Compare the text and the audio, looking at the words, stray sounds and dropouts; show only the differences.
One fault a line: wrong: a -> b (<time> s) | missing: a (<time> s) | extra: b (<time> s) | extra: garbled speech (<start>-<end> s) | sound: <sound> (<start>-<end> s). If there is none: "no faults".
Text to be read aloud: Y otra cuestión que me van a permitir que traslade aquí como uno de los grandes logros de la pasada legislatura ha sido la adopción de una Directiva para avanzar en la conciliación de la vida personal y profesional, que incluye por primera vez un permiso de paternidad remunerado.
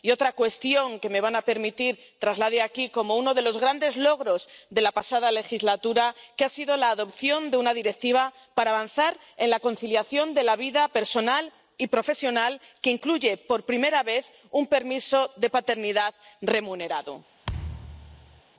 sound: thud (17.4-18.4 s)